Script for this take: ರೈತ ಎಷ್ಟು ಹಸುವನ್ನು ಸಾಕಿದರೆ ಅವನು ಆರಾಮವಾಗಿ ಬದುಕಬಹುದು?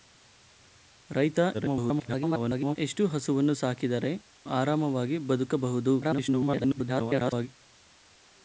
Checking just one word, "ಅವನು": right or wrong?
wrong